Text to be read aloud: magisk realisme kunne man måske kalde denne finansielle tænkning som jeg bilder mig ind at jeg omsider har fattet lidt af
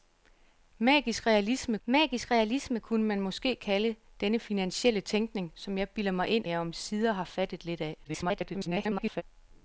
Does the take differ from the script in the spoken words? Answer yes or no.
yes